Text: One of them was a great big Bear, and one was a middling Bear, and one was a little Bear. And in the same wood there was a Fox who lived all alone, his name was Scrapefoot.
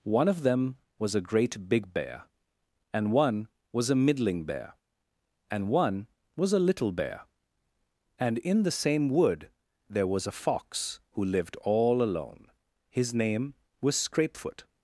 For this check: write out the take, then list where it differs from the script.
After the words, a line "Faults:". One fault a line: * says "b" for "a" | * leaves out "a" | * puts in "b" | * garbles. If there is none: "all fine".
One of them was a great big Bear, and one was a middling Bear, and one was a little Bear. And in the same wood there was a Fox who lived all alone, his name was Scrapefoot.
Faults:
all fine